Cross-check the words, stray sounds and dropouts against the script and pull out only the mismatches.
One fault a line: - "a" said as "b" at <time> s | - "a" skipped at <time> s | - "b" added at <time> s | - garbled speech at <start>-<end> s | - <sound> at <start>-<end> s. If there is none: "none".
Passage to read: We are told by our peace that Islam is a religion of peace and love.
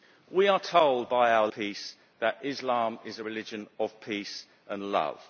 none